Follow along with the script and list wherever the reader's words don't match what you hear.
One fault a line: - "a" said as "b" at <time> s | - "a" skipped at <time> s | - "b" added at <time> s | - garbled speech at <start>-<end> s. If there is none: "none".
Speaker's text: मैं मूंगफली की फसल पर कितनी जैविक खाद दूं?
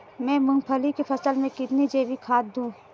- "पर" said as "में" at 1.4 s